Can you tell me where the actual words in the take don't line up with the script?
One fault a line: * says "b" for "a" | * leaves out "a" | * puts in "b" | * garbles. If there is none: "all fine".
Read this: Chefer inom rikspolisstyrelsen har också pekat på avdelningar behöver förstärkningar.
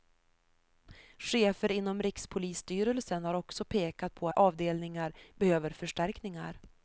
all fine